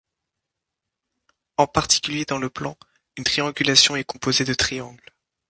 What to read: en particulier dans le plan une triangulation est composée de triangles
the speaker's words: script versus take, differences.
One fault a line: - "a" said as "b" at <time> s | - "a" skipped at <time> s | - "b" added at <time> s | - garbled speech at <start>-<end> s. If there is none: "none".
none